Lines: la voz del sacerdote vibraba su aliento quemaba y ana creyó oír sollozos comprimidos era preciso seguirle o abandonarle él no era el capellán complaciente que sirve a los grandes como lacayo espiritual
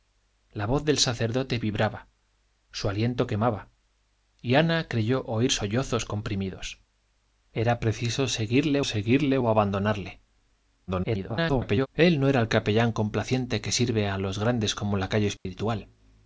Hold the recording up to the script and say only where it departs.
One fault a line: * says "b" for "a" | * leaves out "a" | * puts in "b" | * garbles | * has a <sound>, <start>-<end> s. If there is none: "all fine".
* puts in "seguirle"
* garbles
* has a dropout, 15.4-15.5 s